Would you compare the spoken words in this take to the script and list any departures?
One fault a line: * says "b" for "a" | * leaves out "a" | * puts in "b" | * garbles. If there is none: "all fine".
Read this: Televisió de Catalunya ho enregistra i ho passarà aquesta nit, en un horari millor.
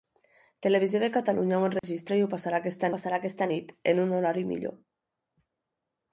* puts in "passarà aquesta"